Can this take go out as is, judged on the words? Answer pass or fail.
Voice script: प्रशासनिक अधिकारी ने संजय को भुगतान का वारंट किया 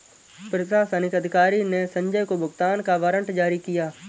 fail